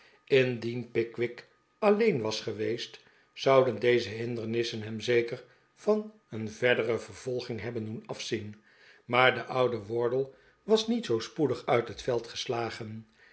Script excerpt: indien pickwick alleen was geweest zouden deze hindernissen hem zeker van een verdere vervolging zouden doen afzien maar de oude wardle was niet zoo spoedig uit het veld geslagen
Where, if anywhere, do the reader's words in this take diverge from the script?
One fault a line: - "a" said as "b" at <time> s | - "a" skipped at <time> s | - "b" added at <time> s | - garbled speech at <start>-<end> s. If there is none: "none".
- "zouden" said as "hebben" at 7.6 s